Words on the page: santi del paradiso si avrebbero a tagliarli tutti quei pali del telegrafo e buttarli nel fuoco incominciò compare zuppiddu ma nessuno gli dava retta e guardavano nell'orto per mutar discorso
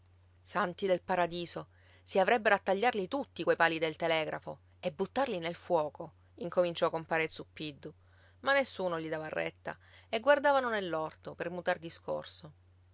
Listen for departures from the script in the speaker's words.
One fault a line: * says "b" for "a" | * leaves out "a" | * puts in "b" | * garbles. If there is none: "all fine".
all fine